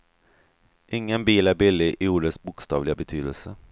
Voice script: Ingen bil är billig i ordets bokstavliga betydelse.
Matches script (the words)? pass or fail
pass